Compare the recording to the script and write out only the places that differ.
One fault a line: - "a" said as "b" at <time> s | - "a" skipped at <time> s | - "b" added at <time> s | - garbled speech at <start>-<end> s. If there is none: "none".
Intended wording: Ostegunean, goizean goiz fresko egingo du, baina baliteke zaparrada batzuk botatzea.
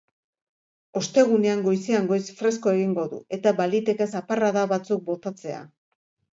- "baina" said as "eta" at 3.4 s